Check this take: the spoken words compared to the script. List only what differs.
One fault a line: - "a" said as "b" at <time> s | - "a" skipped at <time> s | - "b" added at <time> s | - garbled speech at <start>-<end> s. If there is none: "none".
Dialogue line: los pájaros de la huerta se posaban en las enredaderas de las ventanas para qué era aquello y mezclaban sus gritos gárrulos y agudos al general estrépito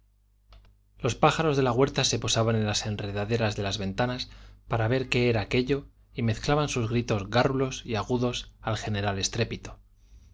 - "ver" added at 4.9 s